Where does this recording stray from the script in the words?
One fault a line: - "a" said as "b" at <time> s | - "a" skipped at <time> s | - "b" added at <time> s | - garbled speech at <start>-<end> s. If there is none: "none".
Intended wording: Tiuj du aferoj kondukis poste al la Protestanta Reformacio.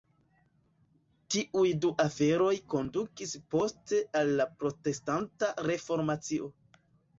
none